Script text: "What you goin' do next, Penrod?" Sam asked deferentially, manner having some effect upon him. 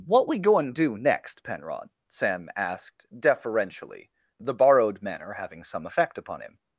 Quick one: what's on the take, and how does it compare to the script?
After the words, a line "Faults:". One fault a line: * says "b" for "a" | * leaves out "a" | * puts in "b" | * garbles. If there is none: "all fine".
"What we goin' do next, Penrod?" Sam asked deferentially, the borrowed manner having some effect upon him.
Faults:
* says "we" for "you"
* puts in "the borrowed"